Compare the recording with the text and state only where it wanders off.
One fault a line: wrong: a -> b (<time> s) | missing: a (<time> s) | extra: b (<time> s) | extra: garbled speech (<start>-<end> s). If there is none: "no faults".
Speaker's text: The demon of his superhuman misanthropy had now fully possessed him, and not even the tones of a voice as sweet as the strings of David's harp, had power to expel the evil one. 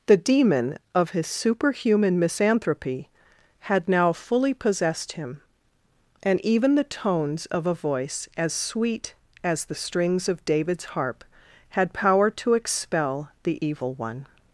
missing: not (6.4 s)